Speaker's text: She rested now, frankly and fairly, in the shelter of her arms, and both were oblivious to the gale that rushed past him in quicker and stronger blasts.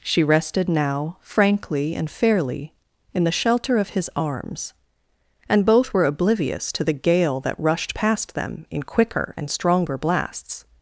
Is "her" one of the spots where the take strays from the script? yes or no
yes